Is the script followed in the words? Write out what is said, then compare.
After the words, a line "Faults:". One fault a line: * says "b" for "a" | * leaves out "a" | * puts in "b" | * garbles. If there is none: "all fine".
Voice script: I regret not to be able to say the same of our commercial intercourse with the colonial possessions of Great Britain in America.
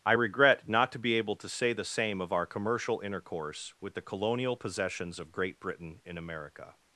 I regret not to be able to say the same of our commercial intercourse with the colonial possessions of Great Britain in America.
Faults:
all fine